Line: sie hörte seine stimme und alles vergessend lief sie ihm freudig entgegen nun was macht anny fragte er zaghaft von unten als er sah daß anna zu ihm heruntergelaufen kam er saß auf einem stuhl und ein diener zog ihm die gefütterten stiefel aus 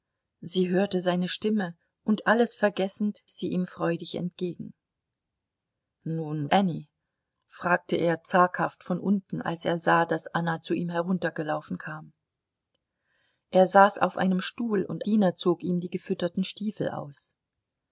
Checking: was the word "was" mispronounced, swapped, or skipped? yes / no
yes